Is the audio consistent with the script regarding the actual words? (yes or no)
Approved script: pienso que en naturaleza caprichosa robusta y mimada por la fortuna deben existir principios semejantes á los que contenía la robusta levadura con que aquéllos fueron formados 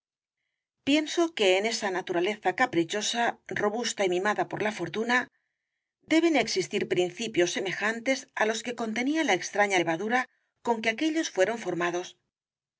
no